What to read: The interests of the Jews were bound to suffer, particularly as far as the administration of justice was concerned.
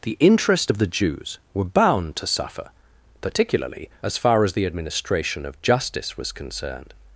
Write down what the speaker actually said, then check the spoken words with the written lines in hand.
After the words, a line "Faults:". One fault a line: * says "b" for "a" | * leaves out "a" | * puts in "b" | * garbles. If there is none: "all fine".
The interest of the Jews were bound to suffer, particularly as far as the administration of justice was concerned.
Faults:
* says "interest" for "interests"